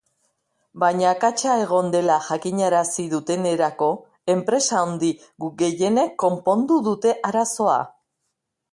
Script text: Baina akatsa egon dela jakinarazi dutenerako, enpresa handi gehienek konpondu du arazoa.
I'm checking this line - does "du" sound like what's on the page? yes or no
no